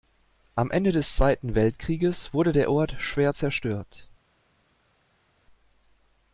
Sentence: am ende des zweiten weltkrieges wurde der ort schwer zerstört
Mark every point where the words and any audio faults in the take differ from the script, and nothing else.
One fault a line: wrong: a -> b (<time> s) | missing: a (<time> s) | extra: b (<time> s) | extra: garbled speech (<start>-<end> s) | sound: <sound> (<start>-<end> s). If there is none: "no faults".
no faults